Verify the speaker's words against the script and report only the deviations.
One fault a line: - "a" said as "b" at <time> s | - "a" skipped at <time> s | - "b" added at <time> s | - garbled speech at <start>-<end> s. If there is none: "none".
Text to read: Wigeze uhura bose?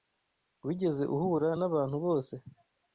- "nabantu" added at 1.6 s